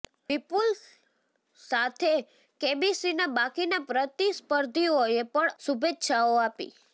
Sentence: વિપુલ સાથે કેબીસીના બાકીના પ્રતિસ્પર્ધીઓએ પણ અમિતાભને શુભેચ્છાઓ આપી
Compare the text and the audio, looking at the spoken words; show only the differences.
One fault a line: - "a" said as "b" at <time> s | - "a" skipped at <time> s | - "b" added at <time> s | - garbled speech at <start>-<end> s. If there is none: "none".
- "અમિતાભને" skipped at 5.5 s